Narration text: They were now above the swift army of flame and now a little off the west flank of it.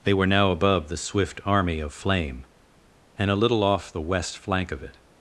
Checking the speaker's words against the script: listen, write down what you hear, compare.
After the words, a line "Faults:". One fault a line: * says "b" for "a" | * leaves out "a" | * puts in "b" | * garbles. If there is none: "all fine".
They were now above the swift army of flame and a little off the west flank of it.
Faults:
* leaves out "now"